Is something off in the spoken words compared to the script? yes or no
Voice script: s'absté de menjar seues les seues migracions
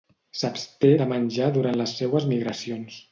yes